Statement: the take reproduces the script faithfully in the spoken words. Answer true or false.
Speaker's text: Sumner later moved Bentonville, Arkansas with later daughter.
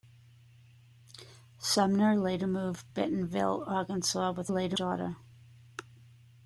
true